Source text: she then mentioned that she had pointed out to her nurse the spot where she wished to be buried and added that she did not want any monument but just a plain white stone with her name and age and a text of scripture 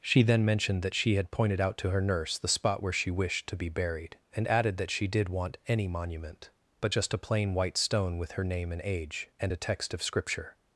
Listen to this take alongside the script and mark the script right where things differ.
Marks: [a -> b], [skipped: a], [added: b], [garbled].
she then mentioned that she had pointed out to her nurse the spot where she wished to be buried and added that she did [skipped: not] want any monument but just a plain white stone with her name and age and a text of scripture